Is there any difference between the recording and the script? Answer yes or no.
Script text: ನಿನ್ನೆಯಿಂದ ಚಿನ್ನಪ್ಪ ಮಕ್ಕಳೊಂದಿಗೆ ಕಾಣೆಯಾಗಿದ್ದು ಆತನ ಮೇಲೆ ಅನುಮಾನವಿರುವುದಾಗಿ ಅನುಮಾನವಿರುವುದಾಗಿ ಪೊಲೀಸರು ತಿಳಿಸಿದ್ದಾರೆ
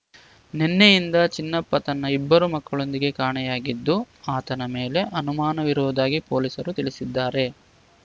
yes